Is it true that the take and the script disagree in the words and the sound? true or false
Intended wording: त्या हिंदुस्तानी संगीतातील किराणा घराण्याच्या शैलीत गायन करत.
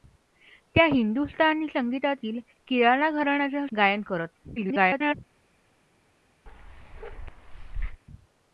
true